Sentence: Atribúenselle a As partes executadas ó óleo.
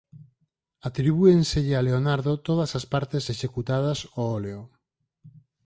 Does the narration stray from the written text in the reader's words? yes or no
yes